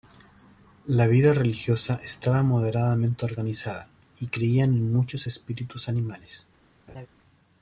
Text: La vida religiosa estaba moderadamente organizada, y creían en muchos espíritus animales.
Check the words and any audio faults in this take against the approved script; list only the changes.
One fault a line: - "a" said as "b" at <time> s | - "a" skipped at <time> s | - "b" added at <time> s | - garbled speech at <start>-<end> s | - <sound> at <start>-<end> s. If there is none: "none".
- laugh at 6.9-7.1 s